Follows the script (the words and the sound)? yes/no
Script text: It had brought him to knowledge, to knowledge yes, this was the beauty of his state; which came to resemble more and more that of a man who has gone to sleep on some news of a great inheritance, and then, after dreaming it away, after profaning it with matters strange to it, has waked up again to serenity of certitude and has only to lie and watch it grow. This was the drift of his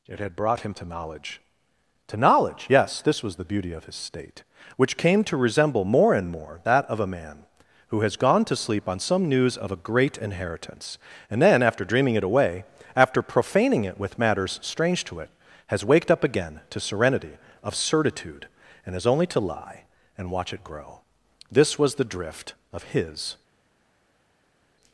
yes